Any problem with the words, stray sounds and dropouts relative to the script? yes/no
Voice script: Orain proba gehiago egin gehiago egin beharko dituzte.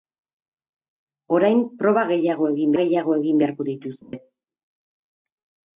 yes